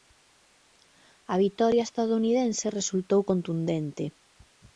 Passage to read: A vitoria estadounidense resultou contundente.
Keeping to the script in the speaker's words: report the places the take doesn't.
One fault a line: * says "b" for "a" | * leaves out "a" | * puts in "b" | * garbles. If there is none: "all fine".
all fine